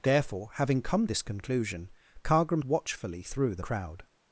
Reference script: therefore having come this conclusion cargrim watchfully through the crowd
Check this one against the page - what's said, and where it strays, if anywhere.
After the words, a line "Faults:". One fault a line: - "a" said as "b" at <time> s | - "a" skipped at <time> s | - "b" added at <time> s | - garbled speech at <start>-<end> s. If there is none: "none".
therefore having come this conclusion cargrim watchfully through the crowd
Faults:
none